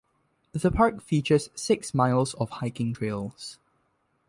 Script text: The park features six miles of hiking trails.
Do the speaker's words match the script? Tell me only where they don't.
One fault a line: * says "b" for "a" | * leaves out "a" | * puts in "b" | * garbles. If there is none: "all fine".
all fine